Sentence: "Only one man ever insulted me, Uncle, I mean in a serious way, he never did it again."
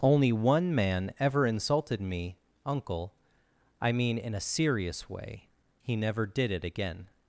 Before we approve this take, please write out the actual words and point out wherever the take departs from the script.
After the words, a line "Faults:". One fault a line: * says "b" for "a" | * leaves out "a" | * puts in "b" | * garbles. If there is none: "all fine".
"Only one man ever insulted me, Uncle, I mean in a serious way, he never did it again."
Faults:
all fine